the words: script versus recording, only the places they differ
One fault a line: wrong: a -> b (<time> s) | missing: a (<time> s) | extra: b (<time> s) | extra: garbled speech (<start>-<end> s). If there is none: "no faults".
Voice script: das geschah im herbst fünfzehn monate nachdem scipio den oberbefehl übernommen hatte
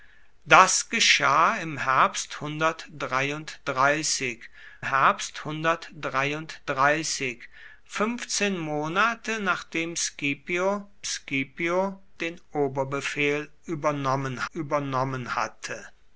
extra: herbst (4.8 s)
extra: scipio (11.0 s)
extra: übernommen (14.5 s)